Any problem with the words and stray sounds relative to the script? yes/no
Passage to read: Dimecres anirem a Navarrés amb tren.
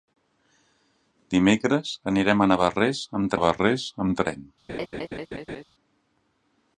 yes